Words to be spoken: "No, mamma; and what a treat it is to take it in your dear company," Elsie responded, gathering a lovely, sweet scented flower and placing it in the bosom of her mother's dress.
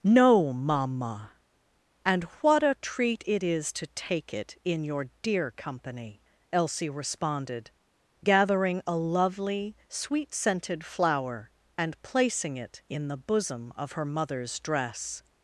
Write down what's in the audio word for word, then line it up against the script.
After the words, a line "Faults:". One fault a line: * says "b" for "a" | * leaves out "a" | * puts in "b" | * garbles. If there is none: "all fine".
"No, mamma; and what a treat it is to take it in your dear company," Elsie responded, gathering a lovely, sweet scented flower and placing it in the bosom of her mother's dress.
Faults:
all fine